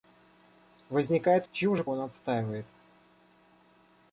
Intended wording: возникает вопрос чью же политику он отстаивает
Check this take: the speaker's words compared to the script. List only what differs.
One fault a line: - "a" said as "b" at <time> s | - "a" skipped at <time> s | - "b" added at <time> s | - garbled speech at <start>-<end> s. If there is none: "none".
- "вопрос" skipped at 1.4 s
- "политику" skipped at 1.8 s